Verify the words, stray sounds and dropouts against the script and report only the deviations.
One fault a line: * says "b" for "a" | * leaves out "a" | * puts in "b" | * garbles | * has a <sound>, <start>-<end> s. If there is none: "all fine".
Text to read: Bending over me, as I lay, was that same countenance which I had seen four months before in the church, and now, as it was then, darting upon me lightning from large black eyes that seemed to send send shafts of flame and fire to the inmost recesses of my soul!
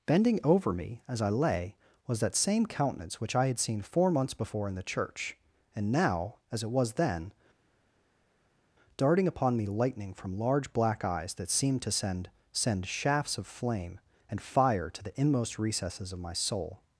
all fine